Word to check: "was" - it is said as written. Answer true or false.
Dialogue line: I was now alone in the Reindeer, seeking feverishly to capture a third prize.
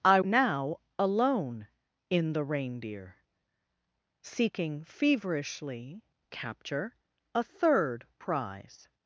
false